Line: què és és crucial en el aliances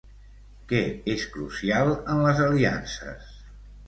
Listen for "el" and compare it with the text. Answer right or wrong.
wrong